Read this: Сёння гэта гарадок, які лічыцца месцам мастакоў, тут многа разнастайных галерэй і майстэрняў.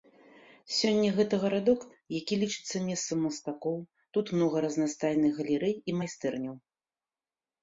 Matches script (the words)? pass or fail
pass